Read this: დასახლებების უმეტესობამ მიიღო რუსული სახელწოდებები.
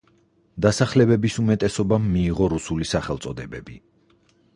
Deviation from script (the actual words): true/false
false